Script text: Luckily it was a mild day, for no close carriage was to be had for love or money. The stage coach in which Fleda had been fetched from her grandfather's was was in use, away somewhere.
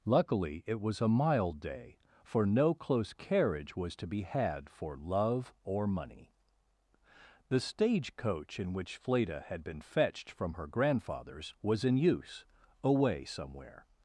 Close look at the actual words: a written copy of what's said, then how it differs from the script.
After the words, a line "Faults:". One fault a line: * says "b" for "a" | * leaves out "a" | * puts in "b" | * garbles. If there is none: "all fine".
Luckily it was a mild day, for no close carriage was to be had for love or money. The stage coach in which Fleda had been fetched from her grandfather's was in use, away somewhere.
Faults:
* leaves out "was"